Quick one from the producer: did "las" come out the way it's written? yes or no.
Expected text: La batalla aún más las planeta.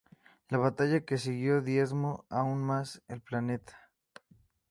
no